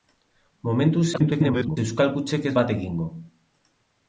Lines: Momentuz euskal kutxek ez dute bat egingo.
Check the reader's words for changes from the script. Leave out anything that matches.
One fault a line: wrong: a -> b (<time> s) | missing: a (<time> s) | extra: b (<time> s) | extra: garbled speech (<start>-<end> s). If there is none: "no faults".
extra: garbled speech (1.1-1.8 s)
missing: dute (2.5 s)